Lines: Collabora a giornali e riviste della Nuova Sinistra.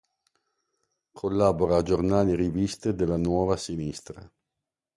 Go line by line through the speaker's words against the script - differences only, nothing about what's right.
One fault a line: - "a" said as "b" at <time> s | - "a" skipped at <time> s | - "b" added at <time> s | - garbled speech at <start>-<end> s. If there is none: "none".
none